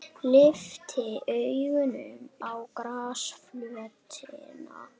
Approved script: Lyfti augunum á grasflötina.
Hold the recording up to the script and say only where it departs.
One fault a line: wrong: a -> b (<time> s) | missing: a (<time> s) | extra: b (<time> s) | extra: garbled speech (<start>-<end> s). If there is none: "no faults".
no faults